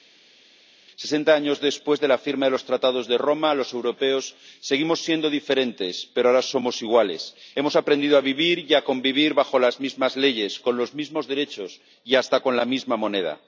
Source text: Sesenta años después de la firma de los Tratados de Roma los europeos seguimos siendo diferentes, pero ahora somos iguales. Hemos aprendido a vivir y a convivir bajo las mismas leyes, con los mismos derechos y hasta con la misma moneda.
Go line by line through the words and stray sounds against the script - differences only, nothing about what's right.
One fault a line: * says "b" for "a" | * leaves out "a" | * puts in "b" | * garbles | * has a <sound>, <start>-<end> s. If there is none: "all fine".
all fine